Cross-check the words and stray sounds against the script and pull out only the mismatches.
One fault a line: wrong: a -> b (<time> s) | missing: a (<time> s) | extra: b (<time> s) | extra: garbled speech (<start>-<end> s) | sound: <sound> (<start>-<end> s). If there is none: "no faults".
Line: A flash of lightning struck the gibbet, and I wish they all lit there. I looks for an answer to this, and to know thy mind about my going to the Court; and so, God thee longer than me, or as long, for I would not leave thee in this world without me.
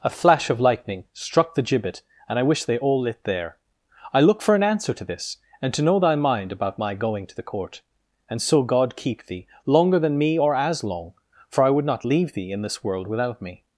wrong: looks -> look (4.2 s)
extra: keep (8.9 s)